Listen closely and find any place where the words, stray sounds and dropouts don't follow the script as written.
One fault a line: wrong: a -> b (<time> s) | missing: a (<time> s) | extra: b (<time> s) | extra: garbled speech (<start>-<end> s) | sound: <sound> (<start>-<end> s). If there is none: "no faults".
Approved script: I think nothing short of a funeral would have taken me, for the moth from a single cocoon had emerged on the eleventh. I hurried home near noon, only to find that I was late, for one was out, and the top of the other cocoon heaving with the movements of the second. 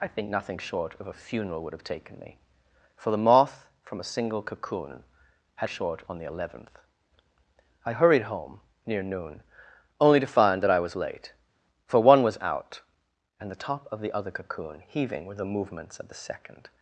wrong: emerged -> short (5.6 s)